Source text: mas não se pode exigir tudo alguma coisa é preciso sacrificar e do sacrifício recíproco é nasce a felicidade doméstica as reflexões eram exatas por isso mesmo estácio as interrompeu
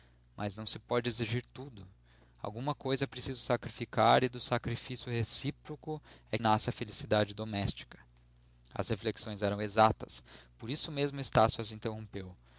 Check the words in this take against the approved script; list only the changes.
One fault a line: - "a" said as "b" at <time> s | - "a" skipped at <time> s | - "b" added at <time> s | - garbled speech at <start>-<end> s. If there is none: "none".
none